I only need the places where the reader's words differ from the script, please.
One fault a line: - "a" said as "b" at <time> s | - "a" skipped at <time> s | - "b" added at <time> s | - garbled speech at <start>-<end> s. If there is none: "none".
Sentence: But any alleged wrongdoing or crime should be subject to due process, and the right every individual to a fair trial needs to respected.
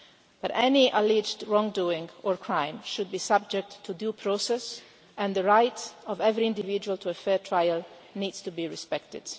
- "of" added at 6.1 s
- "be" added at 8.5 s